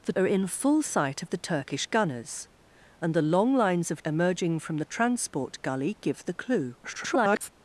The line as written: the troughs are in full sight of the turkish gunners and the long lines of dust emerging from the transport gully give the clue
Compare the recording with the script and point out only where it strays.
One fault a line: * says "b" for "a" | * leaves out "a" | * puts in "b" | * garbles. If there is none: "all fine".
* leaves out "troughs"
* leaves out "dust"
* garbles